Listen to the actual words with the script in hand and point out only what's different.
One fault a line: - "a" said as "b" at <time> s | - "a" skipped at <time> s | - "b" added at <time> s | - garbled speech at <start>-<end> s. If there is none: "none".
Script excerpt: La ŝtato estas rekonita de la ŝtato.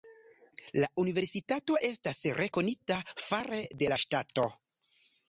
- "ŝtato" said as "universitato" at 1.0 s
- "fare" added at 3.3 s